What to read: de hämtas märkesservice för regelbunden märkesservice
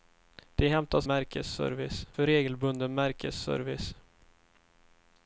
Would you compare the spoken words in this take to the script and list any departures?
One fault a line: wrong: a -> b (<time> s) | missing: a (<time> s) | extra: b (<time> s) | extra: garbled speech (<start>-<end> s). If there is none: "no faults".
no faults